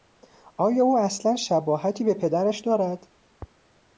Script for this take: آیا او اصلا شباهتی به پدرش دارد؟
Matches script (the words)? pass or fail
pass